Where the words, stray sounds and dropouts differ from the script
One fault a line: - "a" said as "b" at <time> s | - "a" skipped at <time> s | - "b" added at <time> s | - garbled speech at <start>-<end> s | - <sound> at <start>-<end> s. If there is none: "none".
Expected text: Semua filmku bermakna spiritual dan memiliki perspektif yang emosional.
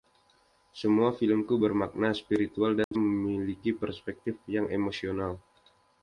- dropout at 2.8-2.9 s